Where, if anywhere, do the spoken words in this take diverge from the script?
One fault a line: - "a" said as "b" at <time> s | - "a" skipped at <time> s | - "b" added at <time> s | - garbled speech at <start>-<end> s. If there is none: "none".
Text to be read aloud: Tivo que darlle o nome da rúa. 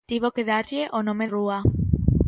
- "da" skipped at 1.2 s